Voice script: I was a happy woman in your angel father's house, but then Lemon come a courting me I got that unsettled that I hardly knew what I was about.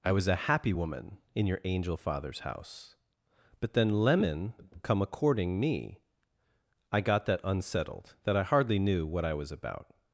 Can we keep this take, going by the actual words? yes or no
yes